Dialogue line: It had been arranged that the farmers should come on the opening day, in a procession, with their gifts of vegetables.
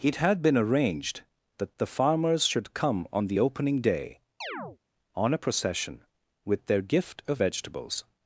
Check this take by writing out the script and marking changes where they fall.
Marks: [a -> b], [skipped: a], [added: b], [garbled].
It had been arranged that the farmers should come on the opening day, [in -> on] a procession, with their [gifts -> gift] of vegetables.